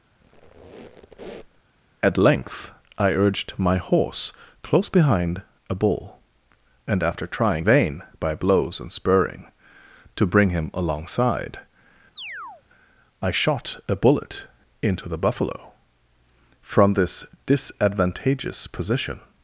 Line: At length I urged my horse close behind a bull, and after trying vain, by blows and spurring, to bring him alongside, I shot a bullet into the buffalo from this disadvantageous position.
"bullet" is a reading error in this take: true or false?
false